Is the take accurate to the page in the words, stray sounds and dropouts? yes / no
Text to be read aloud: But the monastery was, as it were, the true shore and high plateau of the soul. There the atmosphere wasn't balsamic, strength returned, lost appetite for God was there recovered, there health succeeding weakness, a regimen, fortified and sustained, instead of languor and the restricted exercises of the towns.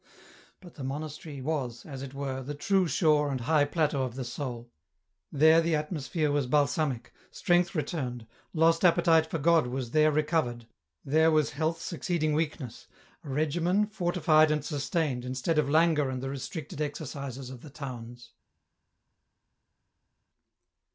no